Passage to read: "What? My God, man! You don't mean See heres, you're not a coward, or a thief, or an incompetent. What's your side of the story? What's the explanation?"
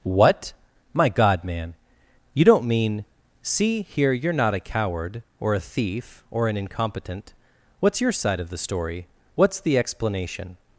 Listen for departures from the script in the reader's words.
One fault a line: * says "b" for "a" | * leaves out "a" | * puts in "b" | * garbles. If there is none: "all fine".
* says "here" for "heres"